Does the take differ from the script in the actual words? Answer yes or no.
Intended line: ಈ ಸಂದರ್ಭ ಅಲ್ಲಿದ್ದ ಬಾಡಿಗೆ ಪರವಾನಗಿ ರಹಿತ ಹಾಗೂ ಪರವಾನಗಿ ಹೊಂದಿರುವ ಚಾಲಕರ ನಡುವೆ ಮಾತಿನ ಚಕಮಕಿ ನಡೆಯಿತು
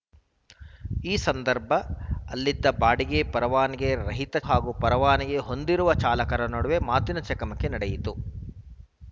no